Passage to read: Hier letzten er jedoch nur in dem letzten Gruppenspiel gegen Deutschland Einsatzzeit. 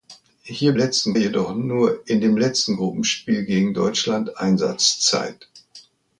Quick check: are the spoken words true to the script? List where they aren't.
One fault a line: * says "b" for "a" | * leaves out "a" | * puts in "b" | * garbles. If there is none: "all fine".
all fine